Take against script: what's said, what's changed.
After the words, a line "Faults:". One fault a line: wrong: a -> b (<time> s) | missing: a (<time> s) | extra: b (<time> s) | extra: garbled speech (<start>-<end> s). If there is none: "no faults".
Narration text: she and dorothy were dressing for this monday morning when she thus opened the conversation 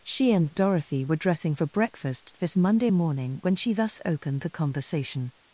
she and dorothy were dressing for breakfast this monday morning when she thus opened the conversation
Faults:
extra: breakfast (1.6 s)